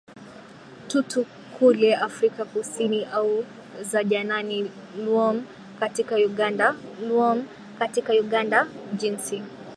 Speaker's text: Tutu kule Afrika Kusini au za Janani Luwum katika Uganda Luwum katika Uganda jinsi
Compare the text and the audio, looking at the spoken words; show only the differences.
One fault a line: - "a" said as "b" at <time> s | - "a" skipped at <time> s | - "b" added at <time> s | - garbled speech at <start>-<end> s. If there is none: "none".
none